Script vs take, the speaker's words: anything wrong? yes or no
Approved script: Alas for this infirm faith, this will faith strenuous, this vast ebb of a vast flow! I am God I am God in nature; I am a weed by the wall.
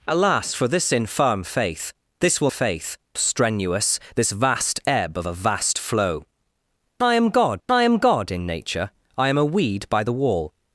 no